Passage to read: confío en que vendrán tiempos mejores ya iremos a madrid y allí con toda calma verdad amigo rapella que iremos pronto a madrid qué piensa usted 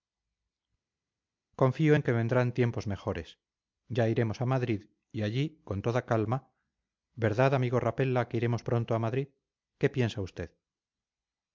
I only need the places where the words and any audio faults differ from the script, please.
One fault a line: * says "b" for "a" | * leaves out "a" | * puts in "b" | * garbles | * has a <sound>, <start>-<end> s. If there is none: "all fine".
all fine